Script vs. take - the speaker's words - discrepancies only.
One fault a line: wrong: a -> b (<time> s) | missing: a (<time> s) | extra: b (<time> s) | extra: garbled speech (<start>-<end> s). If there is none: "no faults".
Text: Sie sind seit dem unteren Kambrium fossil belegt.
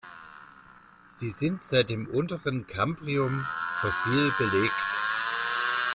no faults